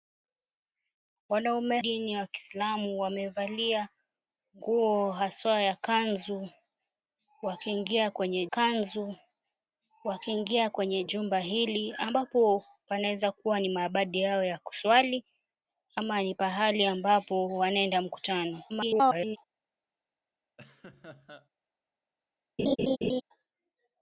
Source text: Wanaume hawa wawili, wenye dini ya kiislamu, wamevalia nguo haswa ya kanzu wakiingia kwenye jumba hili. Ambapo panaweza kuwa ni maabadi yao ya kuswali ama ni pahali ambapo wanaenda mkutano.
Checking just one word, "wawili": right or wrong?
wrong